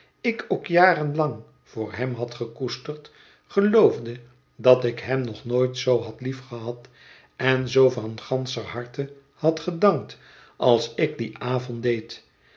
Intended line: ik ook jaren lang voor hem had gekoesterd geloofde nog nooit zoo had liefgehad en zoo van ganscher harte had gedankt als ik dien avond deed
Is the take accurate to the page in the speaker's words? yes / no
no